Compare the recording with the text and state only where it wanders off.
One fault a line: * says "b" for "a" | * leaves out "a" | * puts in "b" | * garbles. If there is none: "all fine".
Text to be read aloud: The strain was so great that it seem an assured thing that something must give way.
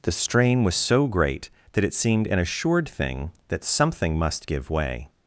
* says "seemed" for "seem"